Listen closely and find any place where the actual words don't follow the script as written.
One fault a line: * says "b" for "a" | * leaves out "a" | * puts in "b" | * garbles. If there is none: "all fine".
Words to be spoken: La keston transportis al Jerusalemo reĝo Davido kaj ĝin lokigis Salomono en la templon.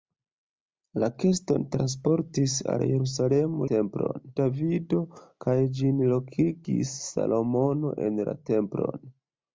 * says "templon" for "reĝo"